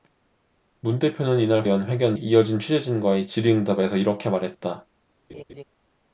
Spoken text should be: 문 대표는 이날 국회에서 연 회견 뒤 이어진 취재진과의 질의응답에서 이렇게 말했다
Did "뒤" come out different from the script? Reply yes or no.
yes